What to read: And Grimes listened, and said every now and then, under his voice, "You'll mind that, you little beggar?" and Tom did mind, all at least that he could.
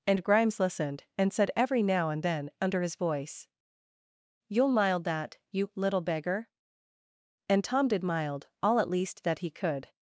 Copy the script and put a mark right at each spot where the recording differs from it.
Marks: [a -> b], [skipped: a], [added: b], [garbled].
And Grimes listened, and said every now and then, under his voice, "You'll [mind -> mild] that, you little beggar?" and Tom did [mind, -> mild] all at least that he could.